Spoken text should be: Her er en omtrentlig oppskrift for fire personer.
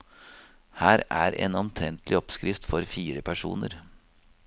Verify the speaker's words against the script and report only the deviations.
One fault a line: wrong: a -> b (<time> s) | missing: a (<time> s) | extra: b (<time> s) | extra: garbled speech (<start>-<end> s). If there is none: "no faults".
no faults